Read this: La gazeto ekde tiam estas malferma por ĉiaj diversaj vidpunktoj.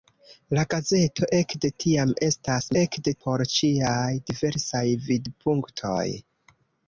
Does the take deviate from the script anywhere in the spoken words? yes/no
yes